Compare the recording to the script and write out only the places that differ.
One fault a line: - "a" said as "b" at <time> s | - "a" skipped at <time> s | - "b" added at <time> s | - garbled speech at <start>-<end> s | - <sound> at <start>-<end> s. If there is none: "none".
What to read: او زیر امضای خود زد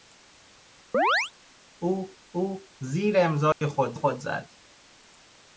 - chirp at 0.9-1.3 s
- "او" added at 2.3 s
- dropout at 3.5-3.6 s
- "خود" added at 3.9 s